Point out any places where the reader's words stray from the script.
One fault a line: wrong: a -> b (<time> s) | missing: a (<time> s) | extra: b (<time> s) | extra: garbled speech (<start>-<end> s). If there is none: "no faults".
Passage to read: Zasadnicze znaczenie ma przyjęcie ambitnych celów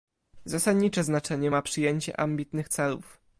no faults